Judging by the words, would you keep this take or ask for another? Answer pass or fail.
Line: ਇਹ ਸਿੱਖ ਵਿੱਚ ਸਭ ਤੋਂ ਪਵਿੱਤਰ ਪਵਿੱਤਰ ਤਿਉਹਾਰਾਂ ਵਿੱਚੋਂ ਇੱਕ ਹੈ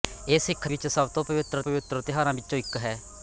pass